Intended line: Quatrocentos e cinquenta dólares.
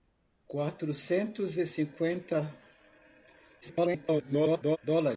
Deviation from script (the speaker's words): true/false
true